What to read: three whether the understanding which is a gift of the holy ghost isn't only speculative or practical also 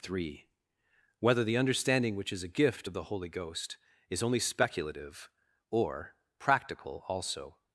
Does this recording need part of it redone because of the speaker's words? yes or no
yes